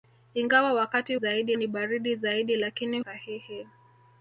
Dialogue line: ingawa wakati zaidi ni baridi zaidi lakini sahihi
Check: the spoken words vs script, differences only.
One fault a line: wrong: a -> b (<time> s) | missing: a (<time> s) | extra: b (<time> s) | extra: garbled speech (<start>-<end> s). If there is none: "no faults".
no faults